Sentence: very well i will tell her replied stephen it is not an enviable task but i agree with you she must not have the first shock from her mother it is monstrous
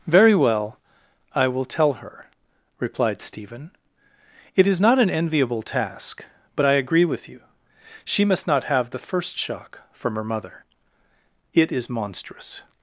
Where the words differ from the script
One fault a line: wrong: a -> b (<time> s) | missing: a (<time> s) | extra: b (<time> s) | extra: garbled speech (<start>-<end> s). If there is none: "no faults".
no faults